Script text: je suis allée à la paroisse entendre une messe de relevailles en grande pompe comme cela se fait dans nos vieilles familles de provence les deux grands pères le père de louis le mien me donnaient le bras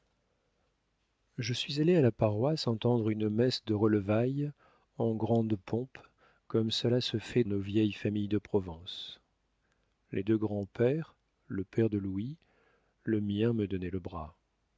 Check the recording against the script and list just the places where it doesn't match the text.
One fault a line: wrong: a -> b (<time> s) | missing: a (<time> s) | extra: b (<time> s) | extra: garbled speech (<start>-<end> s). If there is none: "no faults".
missing: dans (7.4 s)